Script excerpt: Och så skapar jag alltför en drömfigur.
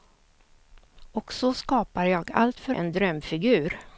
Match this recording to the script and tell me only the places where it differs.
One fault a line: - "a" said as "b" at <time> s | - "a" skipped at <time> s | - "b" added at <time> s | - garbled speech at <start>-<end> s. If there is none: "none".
none